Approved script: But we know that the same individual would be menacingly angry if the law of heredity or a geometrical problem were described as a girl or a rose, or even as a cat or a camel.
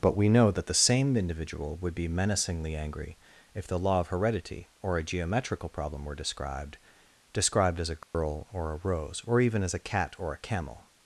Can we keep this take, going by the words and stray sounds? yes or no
no